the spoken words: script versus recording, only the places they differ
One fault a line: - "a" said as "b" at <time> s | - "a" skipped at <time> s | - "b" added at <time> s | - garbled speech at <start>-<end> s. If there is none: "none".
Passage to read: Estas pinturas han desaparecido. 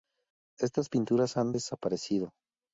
none